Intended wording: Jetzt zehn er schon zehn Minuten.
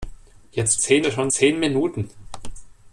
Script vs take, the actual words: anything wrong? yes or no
no